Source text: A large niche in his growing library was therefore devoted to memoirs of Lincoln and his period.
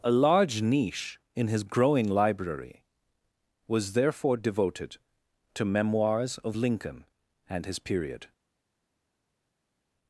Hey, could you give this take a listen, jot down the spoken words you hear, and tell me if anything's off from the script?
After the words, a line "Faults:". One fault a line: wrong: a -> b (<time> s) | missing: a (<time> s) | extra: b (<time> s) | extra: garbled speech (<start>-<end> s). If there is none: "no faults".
A large niche in his growing library was therefore devoted to memoirs of Lincoln and his period.
Faults:
no faults